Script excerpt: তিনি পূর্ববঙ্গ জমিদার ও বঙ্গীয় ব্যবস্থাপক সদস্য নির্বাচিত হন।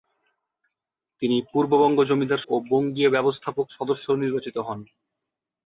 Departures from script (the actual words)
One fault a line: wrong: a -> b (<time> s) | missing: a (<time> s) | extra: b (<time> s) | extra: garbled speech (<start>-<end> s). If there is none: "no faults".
no faults